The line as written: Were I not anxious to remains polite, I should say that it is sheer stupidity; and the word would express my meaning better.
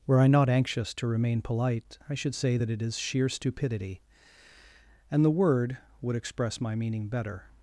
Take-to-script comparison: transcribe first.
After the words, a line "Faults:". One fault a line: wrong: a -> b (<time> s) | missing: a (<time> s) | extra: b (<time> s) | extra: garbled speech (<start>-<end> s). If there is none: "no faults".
Were I not anxious to remain polite, I should say that it is sheer stupidity; and the word would express my meaning better.
Faults:
wrong: remains -> remain (1.1 s)